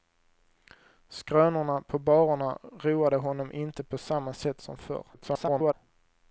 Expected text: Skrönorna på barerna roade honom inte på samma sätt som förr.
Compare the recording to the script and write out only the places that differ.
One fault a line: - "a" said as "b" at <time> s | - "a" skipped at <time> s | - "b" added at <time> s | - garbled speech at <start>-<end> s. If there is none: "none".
- garbled speech at 5.1-5.7 s